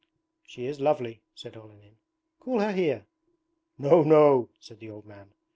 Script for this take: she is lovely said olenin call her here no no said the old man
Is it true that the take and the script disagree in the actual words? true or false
false